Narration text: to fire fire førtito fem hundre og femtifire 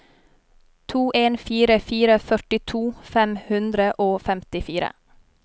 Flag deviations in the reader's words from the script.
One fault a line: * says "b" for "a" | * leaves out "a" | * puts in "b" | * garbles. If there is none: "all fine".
* puts in "en"